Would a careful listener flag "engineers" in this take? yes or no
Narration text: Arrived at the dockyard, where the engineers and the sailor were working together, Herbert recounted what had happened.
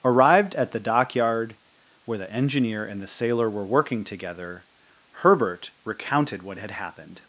yes